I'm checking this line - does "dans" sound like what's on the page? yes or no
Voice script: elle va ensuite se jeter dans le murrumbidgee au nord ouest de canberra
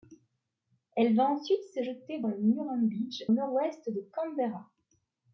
no